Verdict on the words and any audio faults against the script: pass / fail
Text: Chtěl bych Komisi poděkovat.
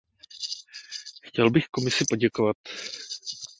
pass